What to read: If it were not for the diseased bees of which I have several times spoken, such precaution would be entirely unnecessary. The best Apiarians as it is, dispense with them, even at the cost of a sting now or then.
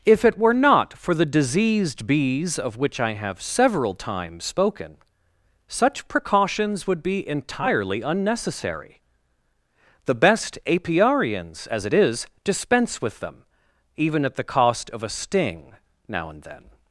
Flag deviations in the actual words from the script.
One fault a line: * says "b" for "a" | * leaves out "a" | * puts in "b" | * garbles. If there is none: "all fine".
* says "precautions" for "precaution"
* says "and" for "or"